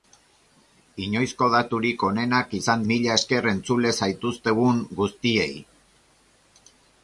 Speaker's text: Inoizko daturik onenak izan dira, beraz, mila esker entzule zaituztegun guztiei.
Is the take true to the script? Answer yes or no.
no